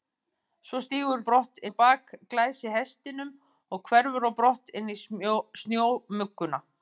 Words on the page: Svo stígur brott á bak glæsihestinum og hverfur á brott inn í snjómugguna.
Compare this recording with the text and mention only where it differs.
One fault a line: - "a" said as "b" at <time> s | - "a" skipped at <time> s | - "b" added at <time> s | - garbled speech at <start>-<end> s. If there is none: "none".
none